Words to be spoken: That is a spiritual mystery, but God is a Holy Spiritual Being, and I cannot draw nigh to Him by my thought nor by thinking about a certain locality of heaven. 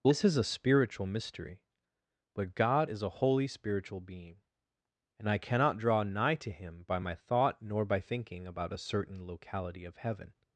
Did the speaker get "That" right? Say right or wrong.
wrong